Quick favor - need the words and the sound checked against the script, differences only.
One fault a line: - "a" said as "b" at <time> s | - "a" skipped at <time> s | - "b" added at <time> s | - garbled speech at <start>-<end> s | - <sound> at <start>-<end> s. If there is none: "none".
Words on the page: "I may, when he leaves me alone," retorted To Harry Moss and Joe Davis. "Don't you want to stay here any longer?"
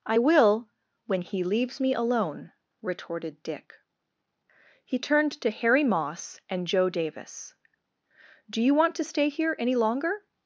- "may" said as "will" at 0.2 s
- "Dick He turned" added at 3.4 s
- "Don't" said as "Do" at 8.5 s